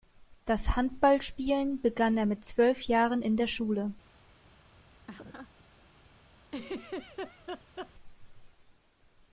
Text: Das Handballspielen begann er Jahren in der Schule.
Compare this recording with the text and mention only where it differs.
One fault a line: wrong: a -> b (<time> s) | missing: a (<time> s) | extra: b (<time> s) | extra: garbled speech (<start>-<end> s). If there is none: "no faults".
extra: mit zwölf (2.2 s)